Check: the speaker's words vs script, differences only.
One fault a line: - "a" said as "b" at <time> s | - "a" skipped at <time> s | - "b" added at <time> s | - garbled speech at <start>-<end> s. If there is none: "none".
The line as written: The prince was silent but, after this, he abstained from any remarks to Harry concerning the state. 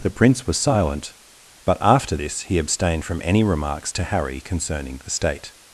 none